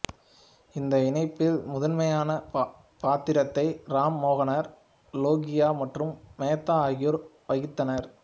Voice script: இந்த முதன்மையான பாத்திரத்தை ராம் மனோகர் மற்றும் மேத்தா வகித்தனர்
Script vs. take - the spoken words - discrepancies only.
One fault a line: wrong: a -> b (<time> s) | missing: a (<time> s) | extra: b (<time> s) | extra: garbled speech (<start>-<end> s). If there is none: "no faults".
extra: இணைப்பில் (1.1 s)
extra: லோகியா (5.1 s)
extra: ஆகியோர் (6.9 s)